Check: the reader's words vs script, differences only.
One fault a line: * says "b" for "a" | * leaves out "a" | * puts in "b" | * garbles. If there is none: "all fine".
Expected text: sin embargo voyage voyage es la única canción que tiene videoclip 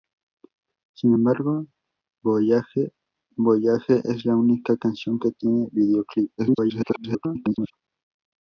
* garbles